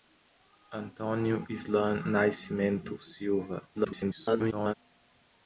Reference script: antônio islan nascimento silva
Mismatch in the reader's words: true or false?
true